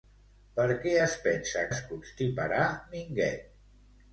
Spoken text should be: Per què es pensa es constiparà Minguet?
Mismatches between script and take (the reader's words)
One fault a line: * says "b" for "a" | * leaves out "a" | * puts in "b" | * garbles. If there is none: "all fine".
all fine